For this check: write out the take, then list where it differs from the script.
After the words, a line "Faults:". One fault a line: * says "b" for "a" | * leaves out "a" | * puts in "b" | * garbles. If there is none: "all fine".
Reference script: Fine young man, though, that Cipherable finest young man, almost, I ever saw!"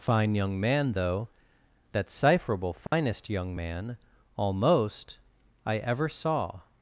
Fine young man, though, that Cipherable finest young man, almost, I ever saw!"
Faults:
all fine